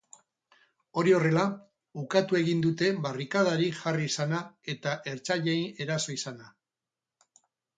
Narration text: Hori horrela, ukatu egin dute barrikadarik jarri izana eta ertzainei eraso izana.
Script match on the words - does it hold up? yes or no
yes